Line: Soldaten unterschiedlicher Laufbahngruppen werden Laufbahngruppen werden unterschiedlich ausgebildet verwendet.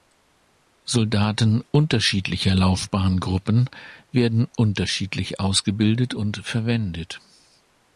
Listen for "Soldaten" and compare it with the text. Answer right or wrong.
right